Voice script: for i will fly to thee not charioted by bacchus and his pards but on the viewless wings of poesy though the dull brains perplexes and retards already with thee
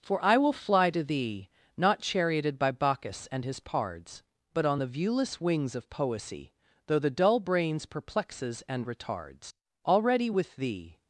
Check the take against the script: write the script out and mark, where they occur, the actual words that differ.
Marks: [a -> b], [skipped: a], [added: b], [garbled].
for i will fly to thee not charioted by bacchus and his pards but on the viewless wings of poesy though the dull brains perplexes and retards already with thee